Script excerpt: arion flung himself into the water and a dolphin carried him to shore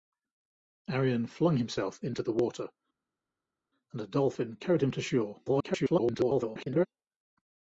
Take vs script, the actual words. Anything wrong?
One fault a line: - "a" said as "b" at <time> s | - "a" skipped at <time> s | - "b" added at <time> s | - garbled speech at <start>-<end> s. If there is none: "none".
- garbled speech at 5.4-6.9 s